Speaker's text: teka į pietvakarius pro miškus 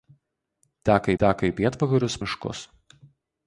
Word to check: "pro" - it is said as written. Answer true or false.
false